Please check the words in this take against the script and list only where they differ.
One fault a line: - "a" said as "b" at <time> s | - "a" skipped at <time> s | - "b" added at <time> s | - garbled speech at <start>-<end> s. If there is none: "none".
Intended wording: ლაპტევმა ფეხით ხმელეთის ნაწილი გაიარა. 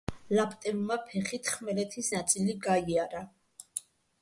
none